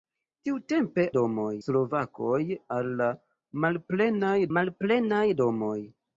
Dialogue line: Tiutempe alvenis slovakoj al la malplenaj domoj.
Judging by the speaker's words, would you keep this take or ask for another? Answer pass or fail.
fail